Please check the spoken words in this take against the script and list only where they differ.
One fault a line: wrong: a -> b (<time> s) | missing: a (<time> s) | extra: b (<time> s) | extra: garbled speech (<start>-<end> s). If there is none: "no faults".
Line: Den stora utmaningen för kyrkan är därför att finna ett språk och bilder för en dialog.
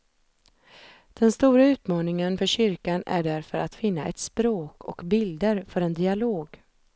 no faults